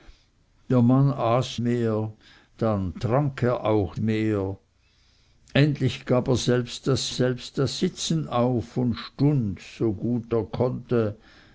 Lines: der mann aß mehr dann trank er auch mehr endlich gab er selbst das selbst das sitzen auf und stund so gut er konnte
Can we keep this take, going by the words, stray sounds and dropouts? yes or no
yes